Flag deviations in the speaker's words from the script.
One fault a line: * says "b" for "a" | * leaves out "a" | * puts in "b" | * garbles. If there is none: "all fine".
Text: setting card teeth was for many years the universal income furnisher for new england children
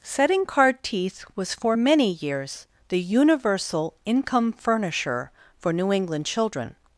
all fine